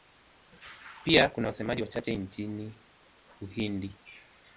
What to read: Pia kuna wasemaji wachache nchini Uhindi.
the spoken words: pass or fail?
pass